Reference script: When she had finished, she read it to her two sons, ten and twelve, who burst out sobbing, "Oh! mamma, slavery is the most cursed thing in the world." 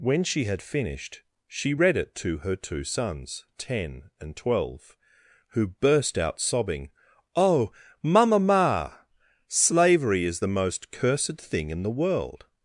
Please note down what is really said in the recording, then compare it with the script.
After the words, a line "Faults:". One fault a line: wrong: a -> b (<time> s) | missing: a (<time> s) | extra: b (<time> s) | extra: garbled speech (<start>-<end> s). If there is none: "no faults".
When she had finished, she read it to her two sons, ten and twelve, who burst out sobbing, "Oh! mamma, ma slavery is the most cursed thing in the world."
Faults:
extra: ma (8.4 s)